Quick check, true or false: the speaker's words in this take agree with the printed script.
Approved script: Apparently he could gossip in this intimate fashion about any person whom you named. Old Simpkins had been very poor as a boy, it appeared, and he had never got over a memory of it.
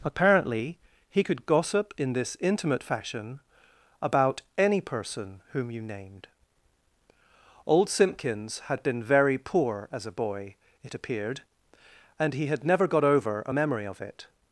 true